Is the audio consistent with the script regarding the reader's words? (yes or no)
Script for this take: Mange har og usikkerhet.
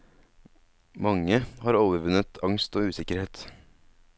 no